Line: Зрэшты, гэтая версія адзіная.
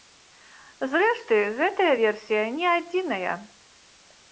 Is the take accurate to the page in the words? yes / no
no